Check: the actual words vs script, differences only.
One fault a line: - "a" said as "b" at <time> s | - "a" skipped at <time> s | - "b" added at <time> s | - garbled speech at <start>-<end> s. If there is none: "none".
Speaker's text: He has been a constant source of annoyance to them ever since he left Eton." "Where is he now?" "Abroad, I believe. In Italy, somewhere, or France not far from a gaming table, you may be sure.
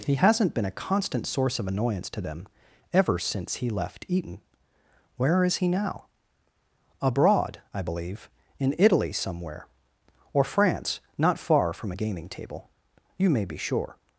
- "has" said as "hasn't" at 0.1 s